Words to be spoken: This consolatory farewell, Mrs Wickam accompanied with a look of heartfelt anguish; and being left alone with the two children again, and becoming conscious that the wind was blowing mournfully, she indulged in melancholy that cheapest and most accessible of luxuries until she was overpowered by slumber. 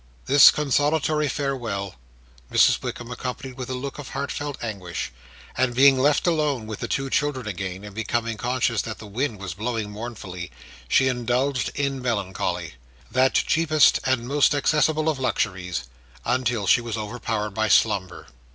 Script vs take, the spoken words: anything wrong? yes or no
no